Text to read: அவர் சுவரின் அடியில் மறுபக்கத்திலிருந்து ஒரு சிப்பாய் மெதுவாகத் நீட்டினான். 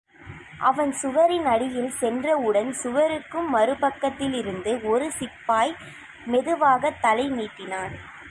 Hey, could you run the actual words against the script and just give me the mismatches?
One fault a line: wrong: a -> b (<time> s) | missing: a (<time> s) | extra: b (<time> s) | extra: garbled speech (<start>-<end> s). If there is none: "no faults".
wrong: அவர் -> அவன் (0.6 s)
extra: சென்றவுடன் சுவருக்கு (1.9 s)
extra: தலை (7.0 s)